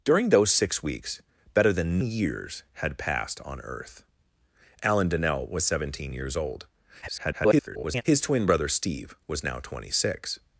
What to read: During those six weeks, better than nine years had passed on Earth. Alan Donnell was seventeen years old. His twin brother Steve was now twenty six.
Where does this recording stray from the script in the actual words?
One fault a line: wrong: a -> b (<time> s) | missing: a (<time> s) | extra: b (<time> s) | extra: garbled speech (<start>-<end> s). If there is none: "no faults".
missing: nine (2.0 s)
extra: garbled speech (7.0-8.0 s)